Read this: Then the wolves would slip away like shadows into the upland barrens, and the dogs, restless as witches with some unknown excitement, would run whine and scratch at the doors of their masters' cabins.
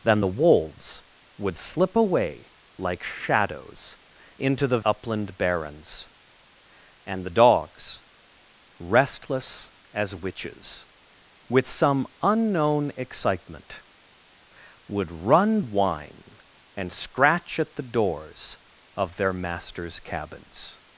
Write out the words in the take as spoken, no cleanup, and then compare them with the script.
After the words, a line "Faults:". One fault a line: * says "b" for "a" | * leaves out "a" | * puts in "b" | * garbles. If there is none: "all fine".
Then the wolves would slip away like shadows into the upland barrens, and the dogs, restless as witches with some unknown excitement, would run whine and scratch at the doors of their masters' cabins.
Faults:
all fine